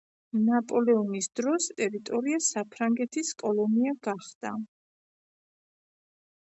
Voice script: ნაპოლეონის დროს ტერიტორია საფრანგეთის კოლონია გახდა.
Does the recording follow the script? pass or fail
pass